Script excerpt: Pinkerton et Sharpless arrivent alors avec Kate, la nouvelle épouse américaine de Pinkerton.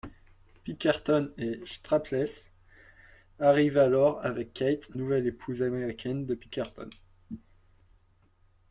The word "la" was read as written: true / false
false